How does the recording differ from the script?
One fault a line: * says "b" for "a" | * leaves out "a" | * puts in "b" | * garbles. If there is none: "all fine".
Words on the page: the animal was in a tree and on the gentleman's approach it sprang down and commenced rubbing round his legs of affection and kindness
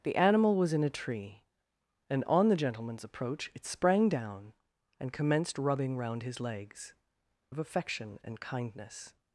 all fine